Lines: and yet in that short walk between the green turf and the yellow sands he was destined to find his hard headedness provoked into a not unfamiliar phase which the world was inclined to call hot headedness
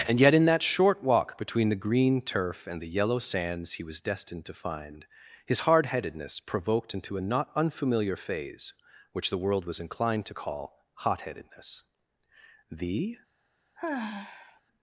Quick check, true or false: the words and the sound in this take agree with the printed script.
false